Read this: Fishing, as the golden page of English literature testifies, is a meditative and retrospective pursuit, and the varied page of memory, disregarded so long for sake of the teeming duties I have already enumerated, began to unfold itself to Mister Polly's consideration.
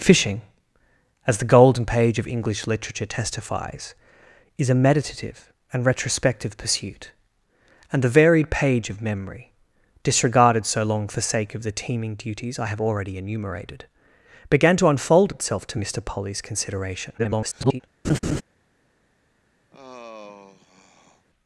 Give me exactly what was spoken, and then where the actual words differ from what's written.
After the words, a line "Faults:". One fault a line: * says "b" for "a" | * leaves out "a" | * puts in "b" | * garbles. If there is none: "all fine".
Fishing, as the golden page of English literature testifies, is a meditative and retrospective pursuit, and the varied page of memory, disregarded so long for sake of the teeming duties I have already enumerated, began to unfold itself to Mister Polly's consideration. [garbled]
Faults:
* garbles